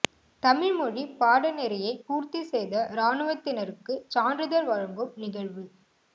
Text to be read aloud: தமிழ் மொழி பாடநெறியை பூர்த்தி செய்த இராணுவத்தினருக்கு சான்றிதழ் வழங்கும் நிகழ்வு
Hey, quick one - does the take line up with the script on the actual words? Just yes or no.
yes